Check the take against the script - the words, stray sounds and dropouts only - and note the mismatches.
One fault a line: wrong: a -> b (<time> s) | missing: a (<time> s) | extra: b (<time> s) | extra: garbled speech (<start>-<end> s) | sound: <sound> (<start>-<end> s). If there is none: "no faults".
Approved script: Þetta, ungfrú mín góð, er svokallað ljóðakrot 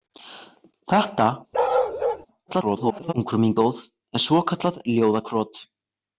sound: bark (1.5-2.3 s)
extra: garbled speech (2.5-3.1 s)